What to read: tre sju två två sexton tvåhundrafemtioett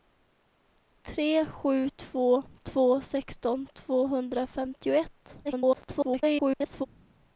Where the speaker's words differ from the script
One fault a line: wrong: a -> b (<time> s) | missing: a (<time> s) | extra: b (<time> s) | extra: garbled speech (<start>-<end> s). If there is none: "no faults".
extra: garbled speech (5.4-6.9 s)